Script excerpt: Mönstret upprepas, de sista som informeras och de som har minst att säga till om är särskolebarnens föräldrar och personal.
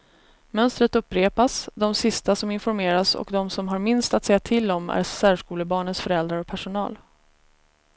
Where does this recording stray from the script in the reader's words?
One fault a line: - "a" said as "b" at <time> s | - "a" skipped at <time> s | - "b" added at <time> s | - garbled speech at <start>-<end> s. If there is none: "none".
none